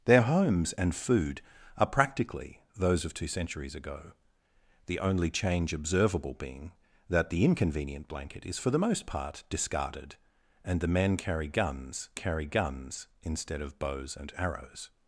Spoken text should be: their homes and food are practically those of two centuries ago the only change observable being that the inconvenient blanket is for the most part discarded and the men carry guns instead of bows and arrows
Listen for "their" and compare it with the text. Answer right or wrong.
right